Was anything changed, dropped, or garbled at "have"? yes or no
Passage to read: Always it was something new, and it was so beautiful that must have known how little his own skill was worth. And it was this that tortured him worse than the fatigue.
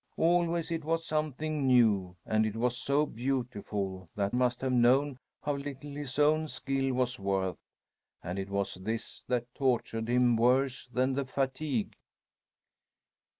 no